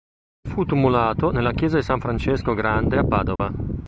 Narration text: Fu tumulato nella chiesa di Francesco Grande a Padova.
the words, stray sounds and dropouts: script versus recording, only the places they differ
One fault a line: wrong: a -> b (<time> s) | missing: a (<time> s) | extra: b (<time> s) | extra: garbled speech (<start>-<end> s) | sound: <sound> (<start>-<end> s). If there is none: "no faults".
extra: San (1.8 s)
sound: dropout (3.4-3.4 s)